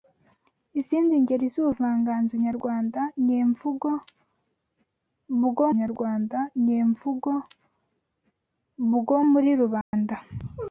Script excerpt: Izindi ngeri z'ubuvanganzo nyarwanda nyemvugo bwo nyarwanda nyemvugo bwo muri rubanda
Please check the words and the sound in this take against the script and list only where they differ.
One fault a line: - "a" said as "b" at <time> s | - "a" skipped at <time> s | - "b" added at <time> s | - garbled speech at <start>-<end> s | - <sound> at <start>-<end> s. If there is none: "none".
- dropout at 9.8-9.9 s